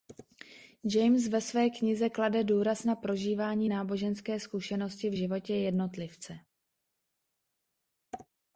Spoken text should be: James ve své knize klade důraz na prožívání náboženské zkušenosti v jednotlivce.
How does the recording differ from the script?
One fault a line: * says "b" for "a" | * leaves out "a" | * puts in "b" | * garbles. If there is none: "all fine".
* puts in "životě"